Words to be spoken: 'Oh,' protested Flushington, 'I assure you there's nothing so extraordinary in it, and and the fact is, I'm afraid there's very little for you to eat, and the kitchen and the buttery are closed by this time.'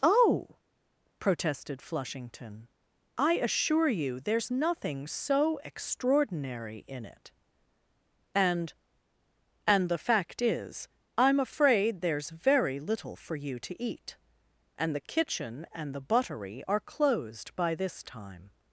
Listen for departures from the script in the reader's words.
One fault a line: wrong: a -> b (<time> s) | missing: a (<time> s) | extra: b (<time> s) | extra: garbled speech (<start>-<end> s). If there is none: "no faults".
no faults